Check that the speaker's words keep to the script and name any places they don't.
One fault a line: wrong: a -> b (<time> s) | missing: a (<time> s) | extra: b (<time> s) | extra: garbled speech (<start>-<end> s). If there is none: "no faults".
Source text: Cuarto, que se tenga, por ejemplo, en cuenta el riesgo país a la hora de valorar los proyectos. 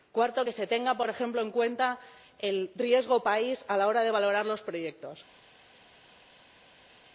no faults